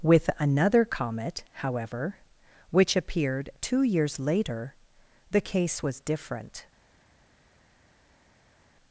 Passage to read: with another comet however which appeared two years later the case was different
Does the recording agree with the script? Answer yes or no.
yes